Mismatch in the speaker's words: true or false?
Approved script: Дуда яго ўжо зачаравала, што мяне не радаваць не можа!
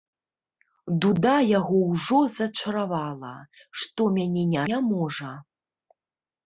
true